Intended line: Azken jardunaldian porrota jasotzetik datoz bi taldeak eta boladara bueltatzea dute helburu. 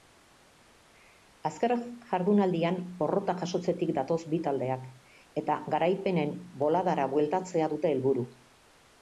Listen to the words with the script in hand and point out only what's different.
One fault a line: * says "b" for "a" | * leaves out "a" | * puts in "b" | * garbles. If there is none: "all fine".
* puts in "garaipenen"